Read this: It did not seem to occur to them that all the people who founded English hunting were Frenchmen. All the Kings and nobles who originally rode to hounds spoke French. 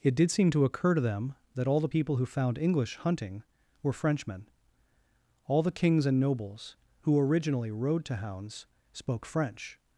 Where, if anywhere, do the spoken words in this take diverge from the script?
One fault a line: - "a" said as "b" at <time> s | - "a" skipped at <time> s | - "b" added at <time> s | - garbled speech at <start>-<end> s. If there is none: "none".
- "not" skipped at 0.3 s
- "founded" said as "found" at 2.3 s